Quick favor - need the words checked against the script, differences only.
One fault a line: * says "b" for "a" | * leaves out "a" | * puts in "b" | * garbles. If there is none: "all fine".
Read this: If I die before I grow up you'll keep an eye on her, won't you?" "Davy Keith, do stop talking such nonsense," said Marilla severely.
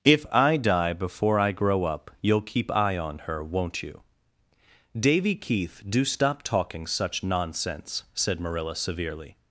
* leaves out "an"